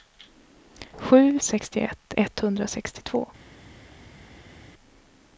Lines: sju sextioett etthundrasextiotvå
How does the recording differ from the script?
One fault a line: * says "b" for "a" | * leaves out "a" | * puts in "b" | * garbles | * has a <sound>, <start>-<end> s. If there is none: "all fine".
all fine